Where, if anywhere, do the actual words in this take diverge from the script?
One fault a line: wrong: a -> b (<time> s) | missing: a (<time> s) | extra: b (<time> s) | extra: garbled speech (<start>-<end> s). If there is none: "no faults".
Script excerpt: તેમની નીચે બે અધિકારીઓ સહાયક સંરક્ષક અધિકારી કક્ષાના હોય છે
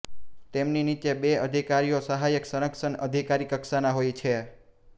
no faults